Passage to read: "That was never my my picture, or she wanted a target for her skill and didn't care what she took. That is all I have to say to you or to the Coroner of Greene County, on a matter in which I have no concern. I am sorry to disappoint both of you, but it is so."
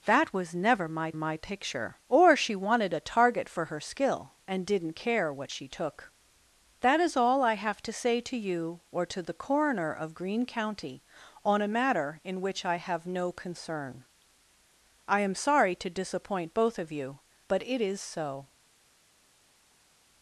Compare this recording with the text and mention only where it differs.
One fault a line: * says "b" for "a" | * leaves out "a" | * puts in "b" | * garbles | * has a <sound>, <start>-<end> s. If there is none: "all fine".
all fine